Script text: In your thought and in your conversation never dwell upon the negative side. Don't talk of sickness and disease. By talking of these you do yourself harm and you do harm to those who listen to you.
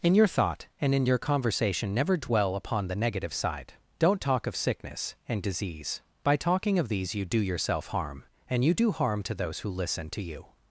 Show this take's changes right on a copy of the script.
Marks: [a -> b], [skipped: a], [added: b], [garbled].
In your thought and in your conversation never dwell upon the negative side. Don't talk of sickness and disease. By talking of these you do yourself harm and you do harm to those who listen to you.